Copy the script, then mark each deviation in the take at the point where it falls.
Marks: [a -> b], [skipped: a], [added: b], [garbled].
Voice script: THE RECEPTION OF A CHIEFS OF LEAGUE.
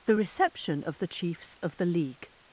THE RECEPTION OF [A -> THE] CHIEFS OF [added: THE] LEAGUE.